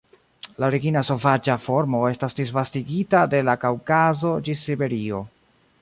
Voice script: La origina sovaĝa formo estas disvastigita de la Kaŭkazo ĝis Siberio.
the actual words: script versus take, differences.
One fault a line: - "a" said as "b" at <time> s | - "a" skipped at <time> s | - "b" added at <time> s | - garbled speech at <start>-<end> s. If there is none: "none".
none